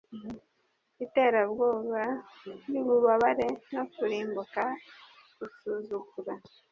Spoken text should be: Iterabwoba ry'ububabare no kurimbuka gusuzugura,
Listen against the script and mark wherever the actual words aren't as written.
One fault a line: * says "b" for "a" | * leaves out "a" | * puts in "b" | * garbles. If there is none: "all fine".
all fine